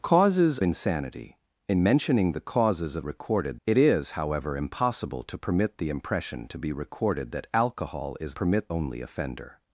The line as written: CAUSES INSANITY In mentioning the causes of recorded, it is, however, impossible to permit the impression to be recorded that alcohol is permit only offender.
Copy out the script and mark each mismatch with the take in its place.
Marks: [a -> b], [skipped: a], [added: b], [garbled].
CAUSES INSANITY In mentioning the causes of recorded, it is, however, impossible to permit the impression to be recorded that alcohol is permit only offender.